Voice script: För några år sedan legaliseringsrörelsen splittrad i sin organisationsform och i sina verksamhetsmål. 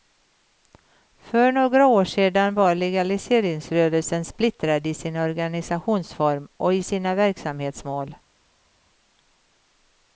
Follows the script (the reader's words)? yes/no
no